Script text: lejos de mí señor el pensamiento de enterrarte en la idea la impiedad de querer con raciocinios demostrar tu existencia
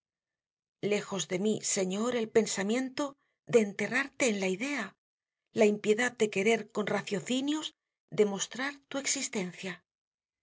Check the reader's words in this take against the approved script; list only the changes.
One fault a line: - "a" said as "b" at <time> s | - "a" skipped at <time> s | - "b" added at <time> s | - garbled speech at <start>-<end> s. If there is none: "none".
none